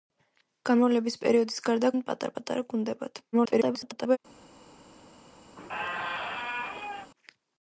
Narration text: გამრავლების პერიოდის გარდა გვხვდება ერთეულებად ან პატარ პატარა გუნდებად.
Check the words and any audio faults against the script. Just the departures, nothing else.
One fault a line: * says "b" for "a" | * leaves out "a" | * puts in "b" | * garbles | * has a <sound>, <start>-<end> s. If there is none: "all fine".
* leaves out "გვხვდება ერთეულებად"
* garbles
* has a squeak, 5.5-7.1 s